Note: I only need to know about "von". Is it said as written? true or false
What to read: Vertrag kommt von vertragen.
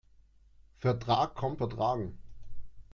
false